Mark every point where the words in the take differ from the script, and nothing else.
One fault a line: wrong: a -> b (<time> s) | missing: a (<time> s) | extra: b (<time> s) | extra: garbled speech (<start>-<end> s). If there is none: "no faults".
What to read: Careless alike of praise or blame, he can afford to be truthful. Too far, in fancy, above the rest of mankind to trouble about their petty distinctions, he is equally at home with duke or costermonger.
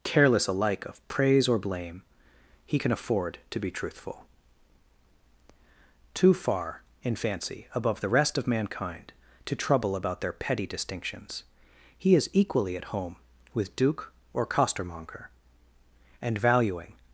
extra: And valuing (16.2 s)